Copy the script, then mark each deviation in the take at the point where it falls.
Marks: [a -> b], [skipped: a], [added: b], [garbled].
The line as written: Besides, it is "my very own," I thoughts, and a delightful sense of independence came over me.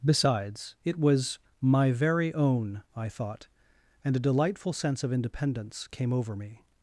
Besides, it [is -> was] "my very own," I [thoughts, -> thought] and a delightful sense of independence came over me.